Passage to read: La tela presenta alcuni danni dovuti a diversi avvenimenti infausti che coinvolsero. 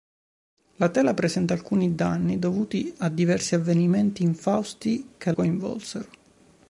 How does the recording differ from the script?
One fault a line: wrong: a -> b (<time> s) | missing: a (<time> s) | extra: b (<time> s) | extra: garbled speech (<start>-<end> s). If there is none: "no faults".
no faults